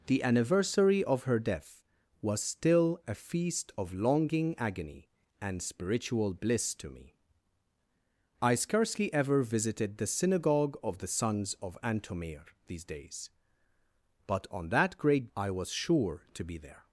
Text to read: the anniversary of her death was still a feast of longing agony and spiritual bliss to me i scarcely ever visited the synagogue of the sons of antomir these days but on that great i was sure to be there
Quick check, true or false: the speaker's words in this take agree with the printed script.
true